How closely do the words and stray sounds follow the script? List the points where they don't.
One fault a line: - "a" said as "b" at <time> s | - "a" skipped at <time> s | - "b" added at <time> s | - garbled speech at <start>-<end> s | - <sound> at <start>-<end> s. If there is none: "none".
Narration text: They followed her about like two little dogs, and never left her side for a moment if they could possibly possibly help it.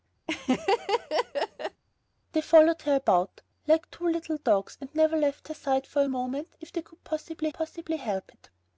- laugh at 0.3-1.8 s